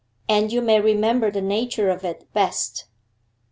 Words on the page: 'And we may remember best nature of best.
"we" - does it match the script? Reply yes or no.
no